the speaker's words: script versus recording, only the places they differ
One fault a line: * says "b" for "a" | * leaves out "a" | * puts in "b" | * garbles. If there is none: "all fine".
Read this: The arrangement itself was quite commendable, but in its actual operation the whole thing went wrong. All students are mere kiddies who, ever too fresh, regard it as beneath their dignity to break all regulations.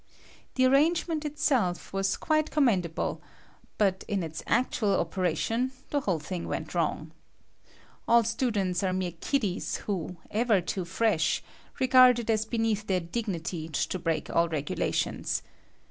all fine